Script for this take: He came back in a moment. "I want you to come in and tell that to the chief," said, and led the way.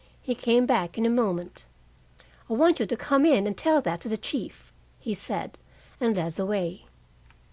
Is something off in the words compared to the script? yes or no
yes